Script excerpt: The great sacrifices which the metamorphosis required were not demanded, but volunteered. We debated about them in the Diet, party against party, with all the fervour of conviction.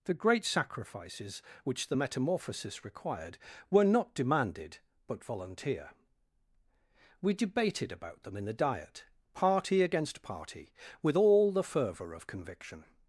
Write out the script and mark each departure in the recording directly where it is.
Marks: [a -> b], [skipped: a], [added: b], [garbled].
The great sacrifices which the metamorphosis required were not demanded, but [volunteered. -> volunteer] We debated about them in the Diet, party against party, with all the fervour of conviction.